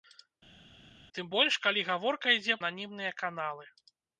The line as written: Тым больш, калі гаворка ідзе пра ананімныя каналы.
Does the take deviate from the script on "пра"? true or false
true